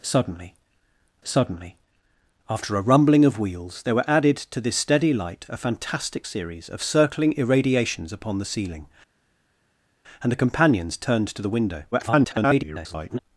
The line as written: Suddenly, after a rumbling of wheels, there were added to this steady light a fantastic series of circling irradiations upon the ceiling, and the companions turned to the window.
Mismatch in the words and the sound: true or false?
true